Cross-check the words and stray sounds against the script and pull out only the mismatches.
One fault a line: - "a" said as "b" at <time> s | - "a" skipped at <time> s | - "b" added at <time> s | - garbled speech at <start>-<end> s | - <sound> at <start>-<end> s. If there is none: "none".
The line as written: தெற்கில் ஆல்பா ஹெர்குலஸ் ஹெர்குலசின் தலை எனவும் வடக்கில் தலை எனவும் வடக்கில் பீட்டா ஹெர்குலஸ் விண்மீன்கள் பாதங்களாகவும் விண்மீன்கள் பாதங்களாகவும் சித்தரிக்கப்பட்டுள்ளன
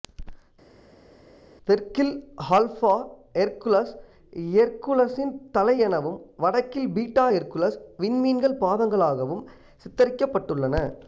- "தலை எனவும் வடக்கில்" skipped at 6.9 s
- "விண்மீன்கள் பாதங்களாகவும்" skipped at 9.4 s